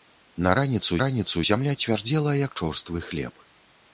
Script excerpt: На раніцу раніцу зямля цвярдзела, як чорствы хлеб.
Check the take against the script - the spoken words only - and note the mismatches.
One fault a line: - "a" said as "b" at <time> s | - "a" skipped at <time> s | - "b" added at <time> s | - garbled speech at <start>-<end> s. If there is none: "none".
none